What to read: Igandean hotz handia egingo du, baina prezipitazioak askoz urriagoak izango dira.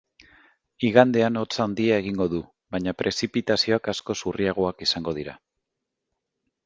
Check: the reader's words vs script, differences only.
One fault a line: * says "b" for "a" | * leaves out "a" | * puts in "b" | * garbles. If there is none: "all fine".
all fine